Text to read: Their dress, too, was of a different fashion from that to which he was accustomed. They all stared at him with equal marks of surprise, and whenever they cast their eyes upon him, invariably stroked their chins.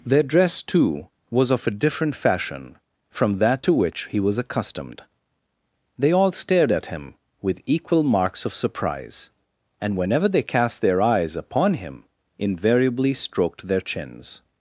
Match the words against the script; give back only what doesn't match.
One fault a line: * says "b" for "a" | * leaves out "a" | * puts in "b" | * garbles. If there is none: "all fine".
all fine